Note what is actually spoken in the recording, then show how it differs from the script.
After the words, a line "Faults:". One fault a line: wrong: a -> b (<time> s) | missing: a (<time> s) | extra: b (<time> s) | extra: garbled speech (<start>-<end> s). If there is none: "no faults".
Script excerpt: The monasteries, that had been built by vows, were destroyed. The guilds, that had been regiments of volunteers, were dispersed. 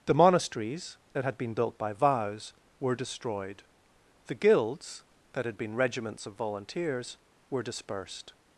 The monasteries, that had been built by vows, were destroyed. The guilds, that had been regiments of volunteers, were dispersed.
Faults:
no faults